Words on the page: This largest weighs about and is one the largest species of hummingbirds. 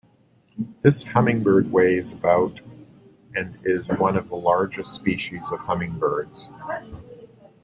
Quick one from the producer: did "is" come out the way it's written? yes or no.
yes